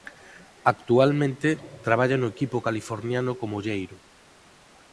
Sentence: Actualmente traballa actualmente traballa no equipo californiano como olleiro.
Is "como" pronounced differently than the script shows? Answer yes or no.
no